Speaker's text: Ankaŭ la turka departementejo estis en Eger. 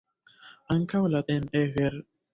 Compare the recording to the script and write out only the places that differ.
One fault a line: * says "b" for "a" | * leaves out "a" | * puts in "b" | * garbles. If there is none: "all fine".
* leaves out "turka departementejo estis"